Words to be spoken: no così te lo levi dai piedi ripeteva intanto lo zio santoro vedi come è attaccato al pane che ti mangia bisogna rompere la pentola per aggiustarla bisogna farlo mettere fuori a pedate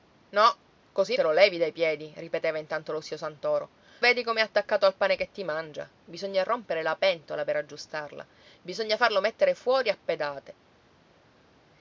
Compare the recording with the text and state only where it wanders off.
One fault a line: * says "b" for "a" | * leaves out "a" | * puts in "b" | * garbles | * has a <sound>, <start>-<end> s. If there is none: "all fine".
all fine